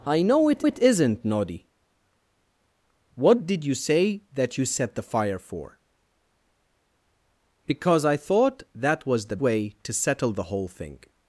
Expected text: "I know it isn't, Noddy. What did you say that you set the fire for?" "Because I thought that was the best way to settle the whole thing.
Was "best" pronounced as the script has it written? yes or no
no